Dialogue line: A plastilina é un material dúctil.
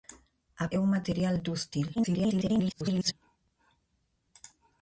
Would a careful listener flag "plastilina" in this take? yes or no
yes